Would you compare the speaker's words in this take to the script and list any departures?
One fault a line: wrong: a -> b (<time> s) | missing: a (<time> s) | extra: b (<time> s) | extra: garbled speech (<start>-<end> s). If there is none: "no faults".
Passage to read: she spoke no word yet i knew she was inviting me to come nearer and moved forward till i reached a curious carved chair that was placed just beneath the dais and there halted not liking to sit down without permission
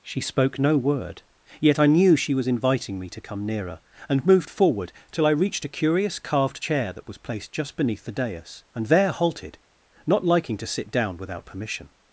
no faults